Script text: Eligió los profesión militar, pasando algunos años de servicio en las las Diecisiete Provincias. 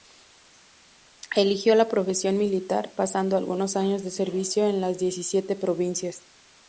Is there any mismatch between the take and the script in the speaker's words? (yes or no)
yes